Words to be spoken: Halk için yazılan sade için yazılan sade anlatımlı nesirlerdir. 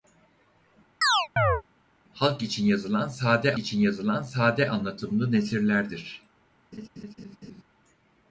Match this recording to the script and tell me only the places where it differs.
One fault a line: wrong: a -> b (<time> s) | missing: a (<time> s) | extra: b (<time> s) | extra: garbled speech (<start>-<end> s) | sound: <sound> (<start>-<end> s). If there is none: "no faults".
sound: chirp (1.0-1.6 s)
sound: laugh (6.7-7.6 s)